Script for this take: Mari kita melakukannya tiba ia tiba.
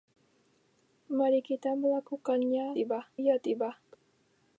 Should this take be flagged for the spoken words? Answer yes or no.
no